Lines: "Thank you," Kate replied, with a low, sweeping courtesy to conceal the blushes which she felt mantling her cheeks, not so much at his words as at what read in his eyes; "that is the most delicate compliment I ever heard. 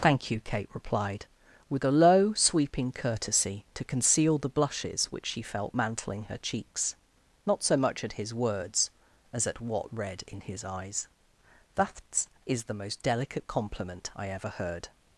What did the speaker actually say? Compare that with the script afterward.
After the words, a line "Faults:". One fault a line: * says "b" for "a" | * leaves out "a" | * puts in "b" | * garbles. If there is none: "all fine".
"Thank you," Kate replied, with a low, sweeping courtesy to conceal the blushes which she felt mantling her cheeks, not so much at his words as at what read in his eyes; "that is the most delicate compliment I ever heard.
Faults:
all fine